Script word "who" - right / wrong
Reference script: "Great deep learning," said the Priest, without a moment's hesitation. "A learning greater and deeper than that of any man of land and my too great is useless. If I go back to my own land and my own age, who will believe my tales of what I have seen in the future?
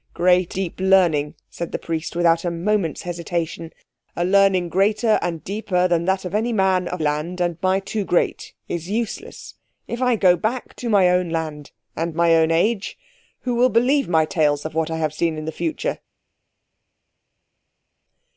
right